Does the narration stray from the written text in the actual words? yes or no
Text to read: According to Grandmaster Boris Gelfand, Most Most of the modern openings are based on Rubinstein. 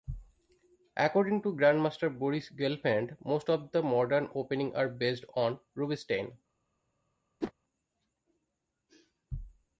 yes